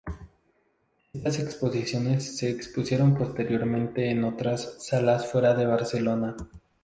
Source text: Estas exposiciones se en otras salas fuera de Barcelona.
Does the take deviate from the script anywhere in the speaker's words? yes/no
yes